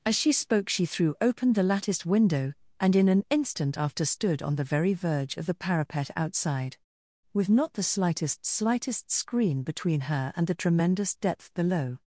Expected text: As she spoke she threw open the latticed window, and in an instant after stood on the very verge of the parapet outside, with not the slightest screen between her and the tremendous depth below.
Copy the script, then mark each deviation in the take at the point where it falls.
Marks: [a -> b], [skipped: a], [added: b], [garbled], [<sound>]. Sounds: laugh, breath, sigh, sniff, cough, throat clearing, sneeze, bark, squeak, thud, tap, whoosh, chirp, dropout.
As she spoke she threw open the latticed window, and in an instant after stood on the very verge of the parapet outside, with not the slightest [added: slightest] screen between her and the tremendous depth below.